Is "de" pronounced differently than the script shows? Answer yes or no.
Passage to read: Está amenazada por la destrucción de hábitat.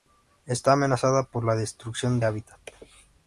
yes